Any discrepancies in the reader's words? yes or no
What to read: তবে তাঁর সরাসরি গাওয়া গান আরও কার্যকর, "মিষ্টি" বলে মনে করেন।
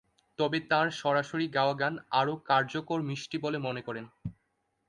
no